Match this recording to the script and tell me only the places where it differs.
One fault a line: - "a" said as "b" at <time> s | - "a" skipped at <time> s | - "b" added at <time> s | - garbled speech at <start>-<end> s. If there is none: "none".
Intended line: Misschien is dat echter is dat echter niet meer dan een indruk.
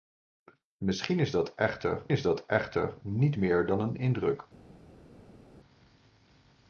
none